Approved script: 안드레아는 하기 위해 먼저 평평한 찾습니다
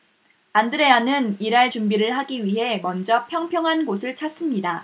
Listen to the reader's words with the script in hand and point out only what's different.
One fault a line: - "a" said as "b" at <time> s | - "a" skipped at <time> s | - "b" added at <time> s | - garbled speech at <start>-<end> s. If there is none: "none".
- "일할 준비를" added at 1.4 s
- "곳을" added at 3.8 s